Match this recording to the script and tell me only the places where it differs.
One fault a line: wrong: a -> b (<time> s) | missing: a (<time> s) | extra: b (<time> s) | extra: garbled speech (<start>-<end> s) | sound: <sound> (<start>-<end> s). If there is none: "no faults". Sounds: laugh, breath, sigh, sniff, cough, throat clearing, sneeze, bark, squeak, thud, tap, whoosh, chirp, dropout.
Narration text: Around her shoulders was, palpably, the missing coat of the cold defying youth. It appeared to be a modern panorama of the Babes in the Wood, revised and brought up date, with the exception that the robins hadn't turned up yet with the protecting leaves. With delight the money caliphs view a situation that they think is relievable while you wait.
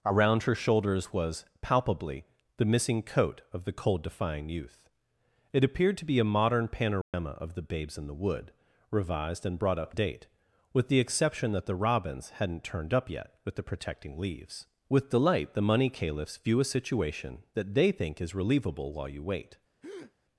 sound: dropout (7.0-7.1 s)
sound: breath (19.8-20.1 s)